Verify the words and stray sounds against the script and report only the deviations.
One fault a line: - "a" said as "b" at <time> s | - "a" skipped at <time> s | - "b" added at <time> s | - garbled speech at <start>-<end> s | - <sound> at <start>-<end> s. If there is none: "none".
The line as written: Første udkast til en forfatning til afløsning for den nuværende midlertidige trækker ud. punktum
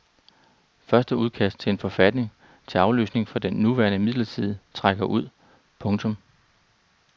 none